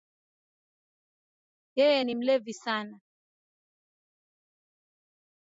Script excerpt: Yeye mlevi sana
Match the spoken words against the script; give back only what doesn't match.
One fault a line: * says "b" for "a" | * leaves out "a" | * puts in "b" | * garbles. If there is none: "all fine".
* puts in "ni"